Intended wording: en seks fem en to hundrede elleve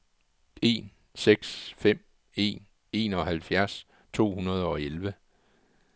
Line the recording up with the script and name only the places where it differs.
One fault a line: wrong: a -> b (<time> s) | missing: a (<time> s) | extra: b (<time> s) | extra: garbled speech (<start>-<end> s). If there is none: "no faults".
extra: enoghalvfjerds (2.9 s)
extra: og (4.6 s)